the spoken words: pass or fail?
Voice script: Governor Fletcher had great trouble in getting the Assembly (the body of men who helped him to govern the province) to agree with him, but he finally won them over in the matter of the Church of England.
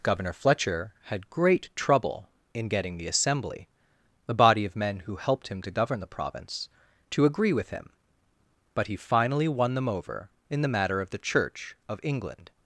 pass